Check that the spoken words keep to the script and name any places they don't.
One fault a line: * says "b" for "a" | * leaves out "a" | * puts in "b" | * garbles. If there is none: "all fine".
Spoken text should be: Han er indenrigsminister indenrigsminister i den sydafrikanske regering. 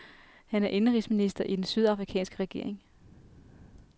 * leaves out "indenrigsminister"